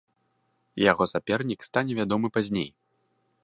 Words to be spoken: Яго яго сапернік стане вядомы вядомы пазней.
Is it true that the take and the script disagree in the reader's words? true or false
true